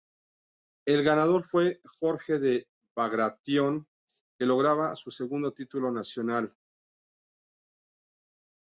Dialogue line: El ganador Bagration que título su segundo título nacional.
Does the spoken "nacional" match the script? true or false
true